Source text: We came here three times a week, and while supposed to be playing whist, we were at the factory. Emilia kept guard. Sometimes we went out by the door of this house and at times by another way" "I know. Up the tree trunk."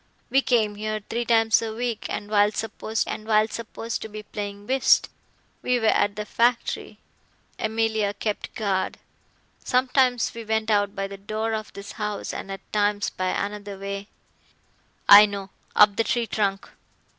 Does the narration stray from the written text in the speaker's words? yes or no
yes